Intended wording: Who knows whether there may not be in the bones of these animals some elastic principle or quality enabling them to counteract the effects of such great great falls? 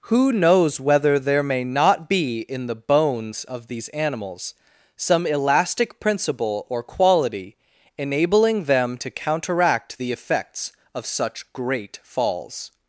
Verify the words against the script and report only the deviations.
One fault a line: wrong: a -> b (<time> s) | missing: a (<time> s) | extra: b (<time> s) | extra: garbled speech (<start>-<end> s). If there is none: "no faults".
missing: great (12.0 s)